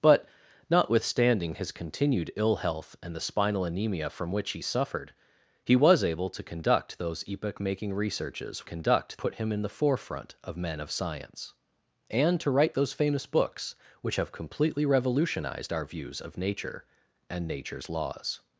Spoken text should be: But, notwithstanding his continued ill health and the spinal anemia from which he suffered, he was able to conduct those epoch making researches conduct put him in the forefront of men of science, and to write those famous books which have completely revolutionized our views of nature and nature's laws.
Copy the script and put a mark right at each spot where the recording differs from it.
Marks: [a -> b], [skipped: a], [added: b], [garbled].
But, notwithstanding his continued ill health and the spinal anemia from which he suffered, he was able to conduct those epoch making researches conduct put him in the forefront of men of science, and to write those famous books which have completely revolutionized our views of nature and nature's laws.